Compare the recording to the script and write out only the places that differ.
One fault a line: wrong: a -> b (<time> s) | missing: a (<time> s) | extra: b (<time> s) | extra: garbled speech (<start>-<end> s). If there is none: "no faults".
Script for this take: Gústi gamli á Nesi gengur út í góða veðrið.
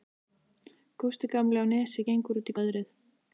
missing: góða (2.6 s)